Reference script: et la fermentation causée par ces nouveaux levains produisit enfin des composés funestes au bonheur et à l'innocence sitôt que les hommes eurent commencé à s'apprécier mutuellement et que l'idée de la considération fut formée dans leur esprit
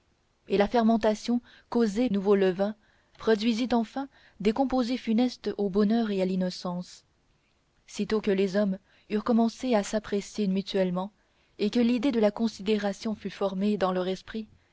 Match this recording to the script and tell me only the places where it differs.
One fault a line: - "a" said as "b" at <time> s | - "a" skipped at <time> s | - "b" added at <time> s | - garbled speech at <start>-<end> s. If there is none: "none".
- "par ces" skipped at 2.1 s